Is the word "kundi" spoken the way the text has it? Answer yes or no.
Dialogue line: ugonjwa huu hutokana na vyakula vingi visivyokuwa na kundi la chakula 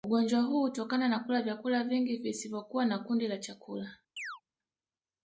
yes